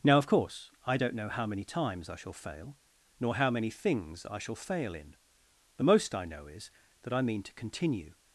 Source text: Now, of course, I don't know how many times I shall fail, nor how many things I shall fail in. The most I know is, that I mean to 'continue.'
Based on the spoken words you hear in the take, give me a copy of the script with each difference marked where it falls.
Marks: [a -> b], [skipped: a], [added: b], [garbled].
Now, of course, I don't know how many times I shall fail, nor how many things I shall fail in. The most I know is, that I mean to 'continue.'